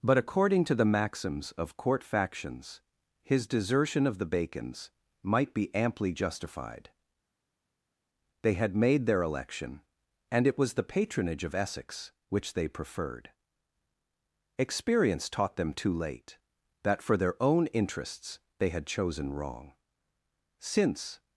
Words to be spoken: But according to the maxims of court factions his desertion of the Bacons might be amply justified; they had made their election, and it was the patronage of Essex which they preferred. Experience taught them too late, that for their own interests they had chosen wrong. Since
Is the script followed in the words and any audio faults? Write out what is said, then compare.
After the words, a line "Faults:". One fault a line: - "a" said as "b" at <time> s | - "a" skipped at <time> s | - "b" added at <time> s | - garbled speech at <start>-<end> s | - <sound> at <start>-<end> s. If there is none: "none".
But according to the maxims of court factions his desertion of the Bacons might be amply justified; they had made their election, and it was the patronage of Essex which they preferred. Experience taught them too late, that for their own interests they had chosen wrong. Since
Faults:
none